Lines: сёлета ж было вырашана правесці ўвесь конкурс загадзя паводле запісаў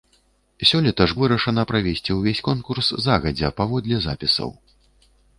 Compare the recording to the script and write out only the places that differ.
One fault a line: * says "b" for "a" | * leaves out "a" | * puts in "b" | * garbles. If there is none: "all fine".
* leaves out "было"